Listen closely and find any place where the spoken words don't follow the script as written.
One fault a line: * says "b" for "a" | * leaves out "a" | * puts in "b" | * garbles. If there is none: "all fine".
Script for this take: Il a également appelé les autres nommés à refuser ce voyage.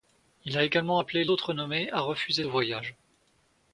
* leaves out "les"
* leaves out "ce"